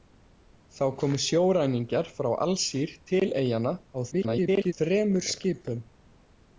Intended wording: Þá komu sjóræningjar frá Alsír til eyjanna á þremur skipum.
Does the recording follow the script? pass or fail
fail